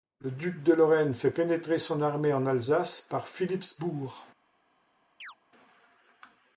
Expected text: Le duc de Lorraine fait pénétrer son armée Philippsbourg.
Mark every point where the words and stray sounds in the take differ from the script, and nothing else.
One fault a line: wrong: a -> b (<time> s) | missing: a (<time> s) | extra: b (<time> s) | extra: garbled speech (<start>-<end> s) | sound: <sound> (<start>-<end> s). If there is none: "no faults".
extra: en Alsace par (2.3 s)
sound: chirp (5.2-5.4 s)